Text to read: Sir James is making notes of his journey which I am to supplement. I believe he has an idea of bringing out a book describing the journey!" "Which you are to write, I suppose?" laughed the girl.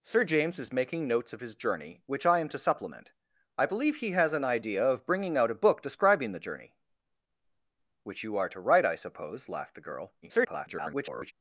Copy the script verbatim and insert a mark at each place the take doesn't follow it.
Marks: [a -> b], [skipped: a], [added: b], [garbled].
Sir James is making notes of his journey which I am to supplement. I believe he has an idea of bringing out a book describing the journey!" "Which you are to write, I suppose?" laughed the girl. [garbled]